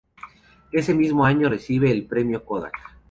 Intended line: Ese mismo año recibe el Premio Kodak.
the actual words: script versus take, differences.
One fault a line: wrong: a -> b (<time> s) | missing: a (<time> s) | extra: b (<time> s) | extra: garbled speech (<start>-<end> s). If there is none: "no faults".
no faults